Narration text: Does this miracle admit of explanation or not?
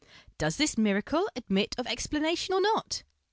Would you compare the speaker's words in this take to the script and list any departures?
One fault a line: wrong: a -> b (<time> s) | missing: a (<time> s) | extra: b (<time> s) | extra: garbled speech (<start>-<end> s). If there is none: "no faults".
no faults